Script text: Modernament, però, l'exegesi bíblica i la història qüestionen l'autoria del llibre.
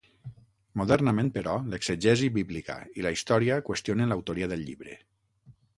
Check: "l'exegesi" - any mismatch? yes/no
no